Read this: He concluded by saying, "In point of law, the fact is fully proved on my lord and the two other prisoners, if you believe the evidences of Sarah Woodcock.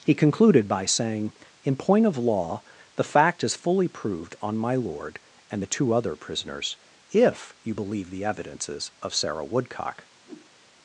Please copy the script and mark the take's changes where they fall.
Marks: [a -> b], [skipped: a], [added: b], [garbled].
He concluded by saying, "In point of law, the fact is fully proved on my lord and the two other prisoners, if you believe the evidences of Sarah Woodcock.